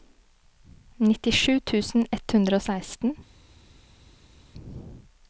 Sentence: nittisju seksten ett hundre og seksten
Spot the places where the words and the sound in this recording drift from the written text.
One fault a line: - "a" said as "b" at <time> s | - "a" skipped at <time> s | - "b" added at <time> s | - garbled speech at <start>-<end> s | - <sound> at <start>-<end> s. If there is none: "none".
- "seksten" said as "tusen" at 1.7 s